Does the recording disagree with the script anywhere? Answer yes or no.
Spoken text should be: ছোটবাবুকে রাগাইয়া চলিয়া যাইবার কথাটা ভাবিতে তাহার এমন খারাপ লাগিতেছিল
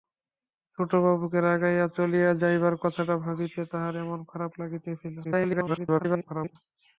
yes